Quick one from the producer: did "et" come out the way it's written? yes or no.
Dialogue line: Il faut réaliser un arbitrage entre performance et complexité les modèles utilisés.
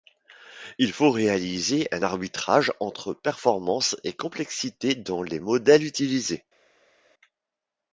yes